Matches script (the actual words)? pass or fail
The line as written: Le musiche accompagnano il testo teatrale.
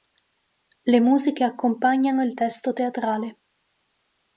pass